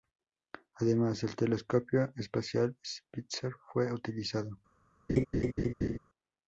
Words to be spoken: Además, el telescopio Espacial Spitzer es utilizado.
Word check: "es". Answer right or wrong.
wrong